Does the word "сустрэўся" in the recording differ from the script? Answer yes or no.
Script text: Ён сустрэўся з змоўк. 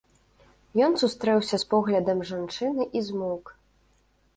no